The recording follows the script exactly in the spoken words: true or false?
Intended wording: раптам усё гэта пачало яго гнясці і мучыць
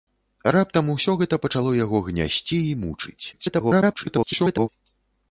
false